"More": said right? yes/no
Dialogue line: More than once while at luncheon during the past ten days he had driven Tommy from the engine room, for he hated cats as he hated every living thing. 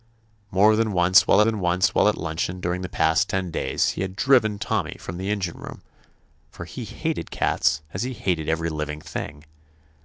yes